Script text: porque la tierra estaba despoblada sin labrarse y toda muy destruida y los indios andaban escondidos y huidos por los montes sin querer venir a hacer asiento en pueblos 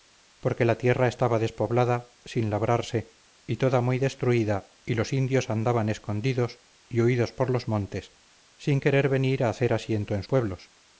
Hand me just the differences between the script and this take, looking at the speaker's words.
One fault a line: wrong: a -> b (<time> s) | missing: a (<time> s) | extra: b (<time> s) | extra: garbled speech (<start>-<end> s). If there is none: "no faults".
no faults